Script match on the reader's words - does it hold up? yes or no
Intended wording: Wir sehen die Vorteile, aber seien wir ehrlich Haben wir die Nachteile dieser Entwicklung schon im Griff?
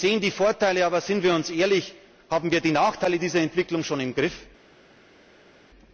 yes